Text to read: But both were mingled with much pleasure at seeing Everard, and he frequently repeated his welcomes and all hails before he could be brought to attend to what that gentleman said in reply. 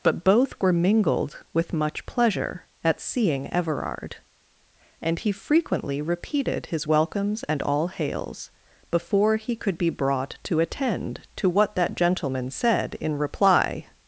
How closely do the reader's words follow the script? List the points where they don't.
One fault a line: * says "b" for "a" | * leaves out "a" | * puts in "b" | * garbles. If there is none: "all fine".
all fine